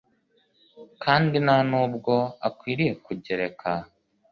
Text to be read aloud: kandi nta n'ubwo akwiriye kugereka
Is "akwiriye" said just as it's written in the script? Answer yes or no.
yes